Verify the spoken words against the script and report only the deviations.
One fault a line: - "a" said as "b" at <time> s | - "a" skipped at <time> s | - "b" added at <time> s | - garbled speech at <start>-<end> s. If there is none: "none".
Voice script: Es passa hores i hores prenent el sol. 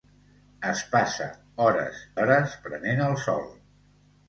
- "i" skipped at 2.0 s